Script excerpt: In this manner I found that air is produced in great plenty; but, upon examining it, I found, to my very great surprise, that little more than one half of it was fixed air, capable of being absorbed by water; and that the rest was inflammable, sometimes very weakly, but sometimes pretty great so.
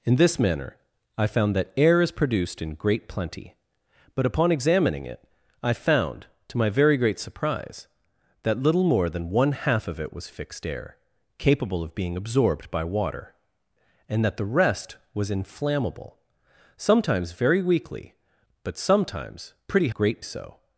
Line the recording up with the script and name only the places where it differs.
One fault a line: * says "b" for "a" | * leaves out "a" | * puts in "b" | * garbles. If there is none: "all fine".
all fine